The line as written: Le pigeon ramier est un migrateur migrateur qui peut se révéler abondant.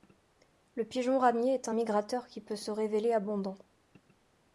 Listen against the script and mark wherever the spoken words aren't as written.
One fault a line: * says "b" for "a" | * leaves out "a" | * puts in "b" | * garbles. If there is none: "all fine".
* leaves out "migrateur"